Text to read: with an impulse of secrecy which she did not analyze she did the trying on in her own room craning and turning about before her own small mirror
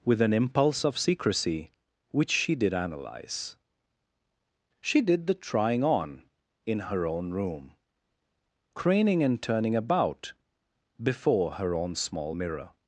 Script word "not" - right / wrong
wrong